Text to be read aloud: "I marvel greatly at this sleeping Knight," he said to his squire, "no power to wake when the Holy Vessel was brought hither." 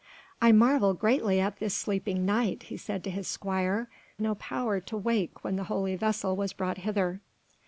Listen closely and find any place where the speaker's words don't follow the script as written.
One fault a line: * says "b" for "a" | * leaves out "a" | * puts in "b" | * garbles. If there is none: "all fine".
all fine